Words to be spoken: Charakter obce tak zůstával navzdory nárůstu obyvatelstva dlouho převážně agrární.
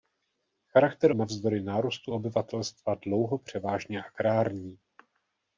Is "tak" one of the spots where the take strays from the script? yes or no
yes